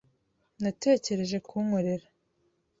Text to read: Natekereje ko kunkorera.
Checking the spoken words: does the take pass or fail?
pass